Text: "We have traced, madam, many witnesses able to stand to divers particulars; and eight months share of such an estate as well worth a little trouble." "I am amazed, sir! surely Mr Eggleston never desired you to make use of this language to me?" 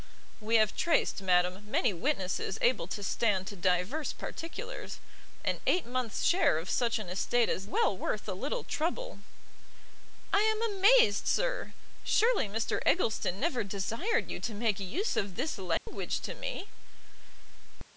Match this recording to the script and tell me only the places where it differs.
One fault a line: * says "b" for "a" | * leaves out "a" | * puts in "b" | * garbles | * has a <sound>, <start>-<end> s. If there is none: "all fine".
* has a dropout, 15.8-15.9 s